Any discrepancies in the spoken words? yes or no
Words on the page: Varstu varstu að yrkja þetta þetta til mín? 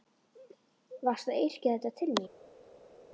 yes